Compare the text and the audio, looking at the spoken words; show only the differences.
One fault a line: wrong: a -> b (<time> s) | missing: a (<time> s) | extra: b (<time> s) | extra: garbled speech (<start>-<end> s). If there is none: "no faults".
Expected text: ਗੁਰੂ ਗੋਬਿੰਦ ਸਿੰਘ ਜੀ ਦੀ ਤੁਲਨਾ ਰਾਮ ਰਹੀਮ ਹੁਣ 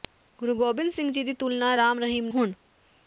no faults